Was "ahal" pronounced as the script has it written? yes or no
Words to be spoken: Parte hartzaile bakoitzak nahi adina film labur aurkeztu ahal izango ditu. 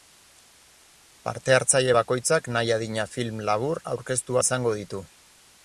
no